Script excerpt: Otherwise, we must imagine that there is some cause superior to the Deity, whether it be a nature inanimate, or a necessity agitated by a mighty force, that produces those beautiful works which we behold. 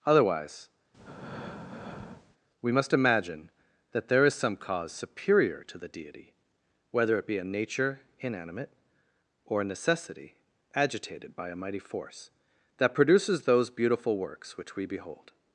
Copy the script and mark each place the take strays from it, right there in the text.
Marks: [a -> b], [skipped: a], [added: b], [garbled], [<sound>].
Otherwise, [breath] we must imagine that there is some cause superior to the Deity, whether it be a nature inanimate, or a necessity agitated by a mighty force, that produces those beautiful works which we behold.